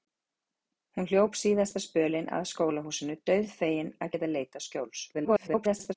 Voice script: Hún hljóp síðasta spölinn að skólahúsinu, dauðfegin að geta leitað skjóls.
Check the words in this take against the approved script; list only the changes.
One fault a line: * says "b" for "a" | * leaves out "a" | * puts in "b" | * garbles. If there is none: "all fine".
* garbles